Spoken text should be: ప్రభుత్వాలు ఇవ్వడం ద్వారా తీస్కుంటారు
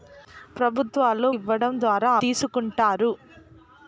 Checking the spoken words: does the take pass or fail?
pass